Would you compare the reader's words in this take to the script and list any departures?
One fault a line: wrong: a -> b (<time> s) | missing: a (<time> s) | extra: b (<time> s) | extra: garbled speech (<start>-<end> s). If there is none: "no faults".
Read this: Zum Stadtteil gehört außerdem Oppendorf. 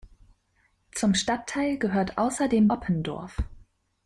no faults